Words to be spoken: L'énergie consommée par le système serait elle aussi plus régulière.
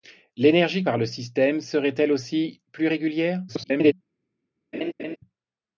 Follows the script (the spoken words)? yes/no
no